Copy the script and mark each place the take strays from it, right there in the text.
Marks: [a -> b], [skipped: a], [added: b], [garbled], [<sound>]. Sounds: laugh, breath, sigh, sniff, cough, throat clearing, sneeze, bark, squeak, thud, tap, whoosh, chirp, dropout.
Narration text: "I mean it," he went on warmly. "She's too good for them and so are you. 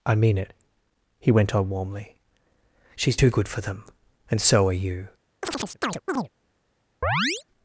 "I mean it," he went on warmly. "She's too good for them and so are you. [chirp] [chirp]